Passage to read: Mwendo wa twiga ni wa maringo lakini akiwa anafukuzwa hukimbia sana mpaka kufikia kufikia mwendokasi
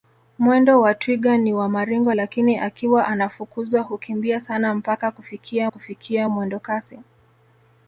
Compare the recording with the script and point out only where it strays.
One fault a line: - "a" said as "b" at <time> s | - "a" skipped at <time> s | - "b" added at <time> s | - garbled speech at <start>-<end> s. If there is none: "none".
none